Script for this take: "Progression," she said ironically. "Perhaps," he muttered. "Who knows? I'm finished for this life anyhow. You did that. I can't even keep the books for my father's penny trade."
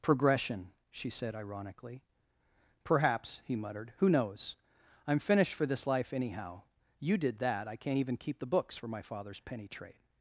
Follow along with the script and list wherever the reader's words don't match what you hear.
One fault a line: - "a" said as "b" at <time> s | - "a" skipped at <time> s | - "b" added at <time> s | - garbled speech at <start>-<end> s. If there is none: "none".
none